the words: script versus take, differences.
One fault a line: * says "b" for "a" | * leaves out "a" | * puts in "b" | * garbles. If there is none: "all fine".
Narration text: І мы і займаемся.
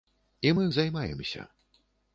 all fine